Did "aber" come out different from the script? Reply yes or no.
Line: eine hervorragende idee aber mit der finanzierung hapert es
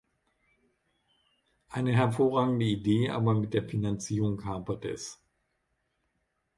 no